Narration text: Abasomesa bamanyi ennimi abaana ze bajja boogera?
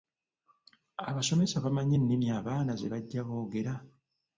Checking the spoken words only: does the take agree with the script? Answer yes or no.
yes